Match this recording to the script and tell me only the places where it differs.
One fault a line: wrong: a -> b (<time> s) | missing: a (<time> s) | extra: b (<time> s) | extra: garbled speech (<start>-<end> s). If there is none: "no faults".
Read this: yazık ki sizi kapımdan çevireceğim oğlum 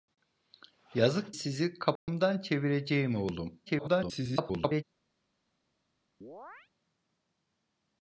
missing: ki (1.4 s)
extra: garbled speech (3.7-4.8 s)